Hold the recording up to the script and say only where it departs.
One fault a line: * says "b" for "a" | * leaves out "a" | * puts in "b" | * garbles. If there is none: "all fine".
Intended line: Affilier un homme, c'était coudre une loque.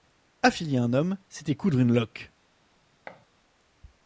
all fine